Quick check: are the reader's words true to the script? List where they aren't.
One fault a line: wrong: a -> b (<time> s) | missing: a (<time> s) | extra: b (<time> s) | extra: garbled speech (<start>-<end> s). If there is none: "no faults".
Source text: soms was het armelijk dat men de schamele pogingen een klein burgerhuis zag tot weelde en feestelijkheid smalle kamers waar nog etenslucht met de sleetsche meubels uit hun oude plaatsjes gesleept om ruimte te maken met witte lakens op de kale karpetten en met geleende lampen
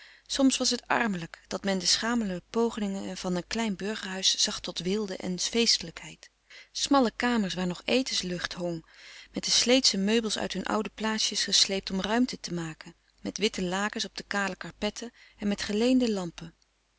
extra: van (3.2 s)
extra: hong (8.5 s)